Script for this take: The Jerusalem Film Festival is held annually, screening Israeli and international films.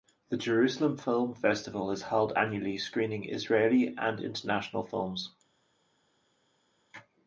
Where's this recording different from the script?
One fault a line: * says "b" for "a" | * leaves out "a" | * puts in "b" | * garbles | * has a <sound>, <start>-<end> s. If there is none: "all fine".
all fine